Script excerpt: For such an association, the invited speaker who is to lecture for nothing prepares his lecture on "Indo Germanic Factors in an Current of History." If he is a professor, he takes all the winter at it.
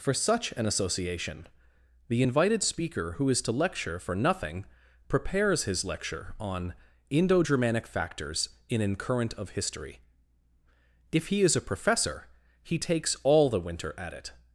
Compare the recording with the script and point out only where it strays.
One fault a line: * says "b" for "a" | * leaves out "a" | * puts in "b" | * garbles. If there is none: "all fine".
all fine